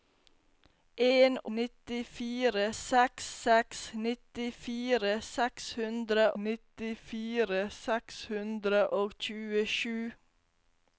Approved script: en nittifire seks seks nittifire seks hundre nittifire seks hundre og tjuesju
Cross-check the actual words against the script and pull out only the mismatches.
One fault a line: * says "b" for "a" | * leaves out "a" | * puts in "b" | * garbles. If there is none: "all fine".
all fine